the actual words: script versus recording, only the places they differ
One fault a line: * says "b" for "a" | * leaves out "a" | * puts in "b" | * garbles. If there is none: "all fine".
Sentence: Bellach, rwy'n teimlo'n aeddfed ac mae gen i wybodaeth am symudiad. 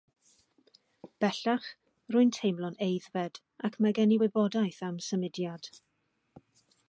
all fine